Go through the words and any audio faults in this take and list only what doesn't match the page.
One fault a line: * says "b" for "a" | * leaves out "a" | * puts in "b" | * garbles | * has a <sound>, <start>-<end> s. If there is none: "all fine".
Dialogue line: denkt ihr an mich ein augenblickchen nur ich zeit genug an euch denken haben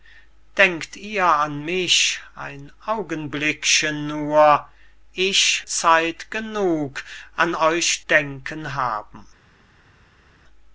all fine